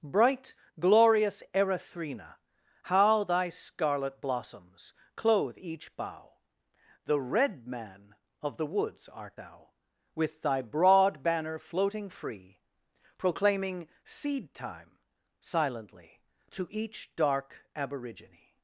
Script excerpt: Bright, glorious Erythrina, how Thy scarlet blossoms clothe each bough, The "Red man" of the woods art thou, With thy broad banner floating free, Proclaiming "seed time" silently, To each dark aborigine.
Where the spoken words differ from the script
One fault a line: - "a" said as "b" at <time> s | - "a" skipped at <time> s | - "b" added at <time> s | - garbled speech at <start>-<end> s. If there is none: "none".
none